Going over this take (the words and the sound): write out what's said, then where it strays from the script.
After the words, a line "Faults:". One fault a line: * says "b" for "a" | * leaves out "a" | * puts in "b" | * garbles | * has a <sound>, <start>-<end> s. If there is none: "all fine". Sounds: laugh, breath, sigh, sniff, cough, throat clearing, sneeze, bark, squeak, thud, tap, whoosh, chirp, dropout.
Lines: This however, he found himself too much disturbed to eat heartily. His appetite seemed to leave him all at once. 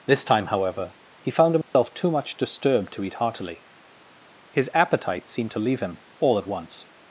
This time, however, he found himself too much disturbed to eat heartily. His appetite seemed to leave him all at once.
Faults:
* puts in "time"
* has a dropout, 1.6-1.7 s